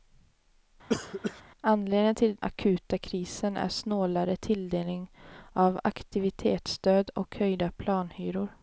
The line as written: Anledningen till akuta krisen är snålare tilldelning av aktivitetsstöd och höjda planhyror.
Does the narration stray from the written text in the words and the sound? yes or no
yes